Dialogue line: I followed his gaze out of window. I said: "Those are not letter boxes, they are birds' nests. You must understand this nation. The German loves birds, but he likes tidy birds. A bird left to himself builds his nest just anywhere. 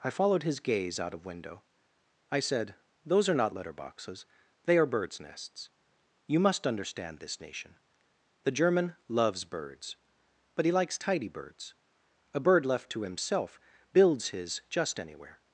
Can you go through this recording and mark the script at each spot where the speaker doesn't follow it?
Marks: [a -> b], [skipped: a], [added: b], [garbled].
I followed his gaze out of window. I said: "Those are not letter boxes, they are birds' nests. You must understand this nation. The German loves birds, but he likes tidy birds. A bird left to himself builds his [skipped: nest] just anywhere.